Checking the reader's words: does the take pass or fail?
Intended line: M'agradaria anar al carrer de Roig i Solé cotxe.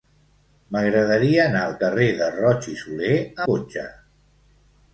pass